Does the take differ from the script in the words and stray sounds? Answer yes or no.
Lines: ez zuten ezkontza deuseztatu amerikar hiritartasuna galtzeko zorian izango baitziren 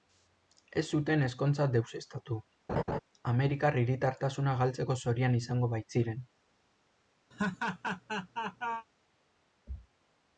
yes